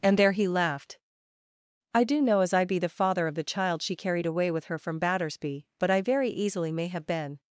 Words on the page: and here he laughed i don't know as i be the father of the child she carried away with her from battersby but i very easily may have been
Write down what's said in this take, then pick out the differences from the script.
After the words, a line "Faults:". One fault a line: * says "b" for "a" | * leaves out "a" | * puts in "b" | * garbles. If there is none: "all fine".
and there he laughed i do know as i be the father of the child she carried away with her from battersby but i very easily may have been
Faults:
* says "there" for "here"
* says "do" for "don't"